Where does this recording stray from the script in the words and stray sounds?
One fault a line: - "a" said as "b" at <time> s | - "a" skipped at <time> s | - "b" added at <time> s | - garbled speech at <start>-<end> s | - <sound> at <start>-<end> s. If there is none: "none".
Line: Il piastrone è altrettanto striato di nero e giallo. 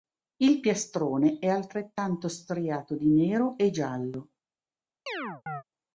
- chirp at 5.1-5.6 s